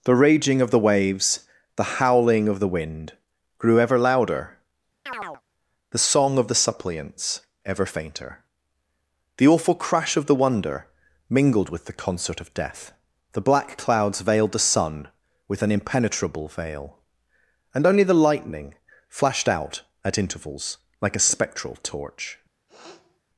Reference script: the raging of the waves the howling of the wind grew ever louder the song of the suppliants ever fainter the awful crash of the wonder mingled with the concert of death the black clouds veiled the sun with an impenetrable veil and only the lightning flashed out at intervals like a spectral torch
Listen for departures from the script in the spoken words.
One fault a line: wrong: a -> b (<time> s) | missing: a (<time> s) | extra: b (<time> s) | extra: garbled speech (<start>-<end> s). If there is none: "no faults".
no faults